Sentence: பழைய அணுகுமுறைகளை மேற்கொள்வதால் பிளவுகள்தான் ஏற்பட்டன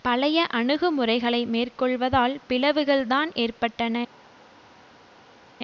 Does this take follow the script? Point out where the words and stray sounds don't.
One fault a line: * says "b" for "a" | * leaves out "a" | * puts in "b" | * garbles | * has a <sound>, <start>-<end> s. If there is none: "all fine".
all fine